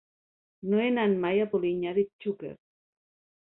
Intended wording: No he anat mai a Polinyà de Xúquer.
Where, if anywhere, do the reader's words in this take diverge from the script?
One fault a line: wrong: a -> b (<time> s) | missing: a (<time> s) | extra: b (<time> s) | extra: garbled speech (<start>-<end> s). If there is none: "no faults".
no faults